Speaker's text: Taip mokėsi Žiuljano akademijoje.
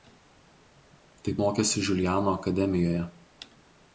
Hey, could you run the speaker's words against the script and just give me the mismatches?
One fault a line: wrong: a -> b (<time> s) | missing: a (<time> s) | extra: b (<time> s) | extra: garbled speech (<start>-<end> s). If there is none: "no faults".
no faults